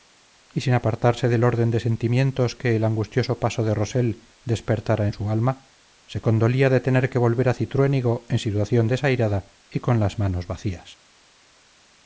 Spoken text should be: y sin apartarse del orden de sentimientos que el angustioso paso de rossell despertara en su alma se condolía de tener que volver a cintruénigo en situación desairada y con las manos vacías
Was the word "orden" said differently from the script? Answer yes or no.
no